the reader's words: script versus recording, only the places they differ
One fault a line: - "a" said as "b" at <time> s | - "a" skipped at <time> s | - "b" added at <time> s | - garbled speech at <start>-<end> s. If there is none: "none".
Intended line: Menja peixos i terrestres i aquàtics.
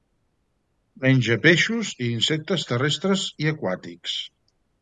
- "insectes" added at 2.2 s